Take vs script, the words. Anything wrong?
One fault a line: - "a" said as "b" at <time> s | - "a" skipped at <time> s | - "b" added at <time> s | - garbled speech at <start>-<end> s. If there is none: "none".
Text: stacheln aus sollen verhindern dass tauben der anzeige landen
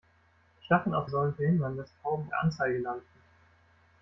none